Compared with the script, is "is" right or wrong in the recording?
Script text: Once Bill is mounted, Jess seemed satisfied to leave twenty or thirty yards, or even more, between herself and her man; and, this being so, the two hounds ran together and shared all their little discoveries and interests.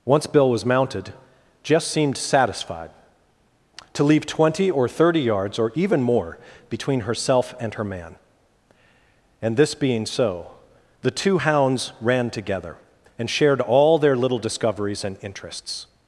wrong